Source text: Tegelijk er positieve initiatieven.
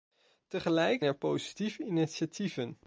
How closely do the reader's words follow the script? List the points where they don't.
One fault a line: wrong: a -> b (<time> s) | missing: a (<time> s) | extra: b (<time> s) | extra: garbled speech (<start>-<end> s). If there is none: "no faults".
no faults